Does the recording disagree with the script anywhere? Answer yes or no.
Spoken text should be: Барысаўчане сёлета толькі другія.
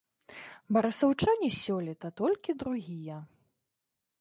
no